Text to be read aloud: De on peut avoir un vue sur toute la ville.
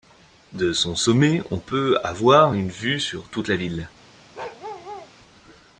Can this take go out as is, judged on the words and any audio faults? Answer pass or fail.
fail